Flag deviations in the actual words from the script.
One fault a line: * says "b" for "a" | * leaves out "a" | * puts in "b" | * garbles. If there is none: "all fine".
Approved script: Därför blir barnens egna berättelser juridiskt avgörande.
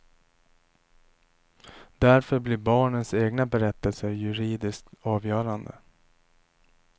all fine